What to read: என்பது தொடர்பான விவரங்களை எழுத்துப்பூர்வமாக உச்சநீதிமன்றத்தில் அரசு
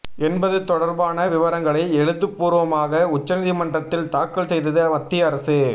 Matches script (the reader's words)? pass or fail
fail